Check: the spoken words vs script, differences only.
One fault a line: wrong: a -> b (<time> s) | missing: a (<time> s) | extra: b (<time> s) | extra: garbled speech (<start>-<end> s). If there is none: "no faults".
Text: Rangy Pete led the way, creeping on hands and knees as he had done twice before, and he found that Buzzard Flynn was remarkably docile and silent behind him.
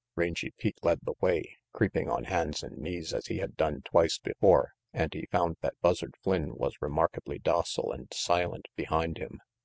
no faults